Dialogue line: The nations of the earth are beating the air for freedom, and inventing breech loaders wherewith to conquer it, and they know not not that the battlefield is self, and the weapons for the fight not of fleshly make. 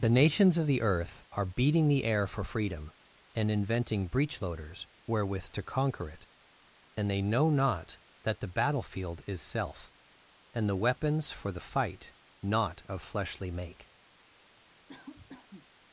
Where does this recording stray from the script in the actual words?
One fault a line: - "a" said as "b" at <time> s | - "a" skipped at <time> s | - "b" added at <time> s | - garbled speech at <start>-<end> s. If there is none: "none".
- "not" skipped at 8.0 s